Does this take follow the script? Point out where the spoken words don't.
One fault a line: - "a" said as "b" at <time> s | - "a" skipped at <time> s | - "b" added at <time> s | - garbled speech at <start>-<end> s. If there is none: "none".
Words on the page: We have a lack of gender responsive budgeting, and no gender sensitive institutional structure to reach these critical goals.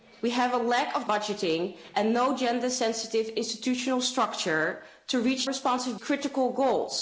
- "gender responsive" skipped at 1.1 s
- "these" said as "responsive" at 5.4 s